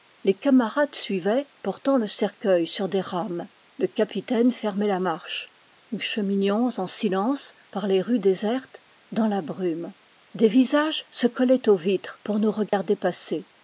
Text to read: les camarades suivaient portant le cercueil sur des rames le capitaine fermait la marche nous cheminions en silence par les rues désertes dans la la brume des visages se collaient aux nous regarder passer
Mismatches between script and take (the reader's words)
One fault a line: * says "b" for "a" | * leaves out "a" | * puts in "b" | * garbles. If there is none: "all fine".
* leaves out "la"
* puts in "vitres pour"